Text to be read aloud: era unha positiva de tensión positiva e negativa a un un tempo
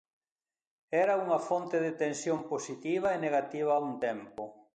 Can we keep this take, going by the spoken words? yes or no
no